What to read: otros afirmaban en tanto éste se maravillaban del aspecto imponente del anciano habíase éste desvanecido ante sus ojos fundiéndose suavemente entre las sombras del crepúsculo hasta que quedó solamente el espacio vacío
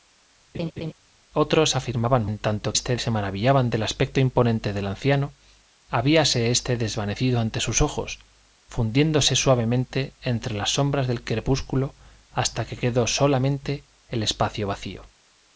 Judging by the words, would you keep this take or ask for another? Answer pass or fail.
pass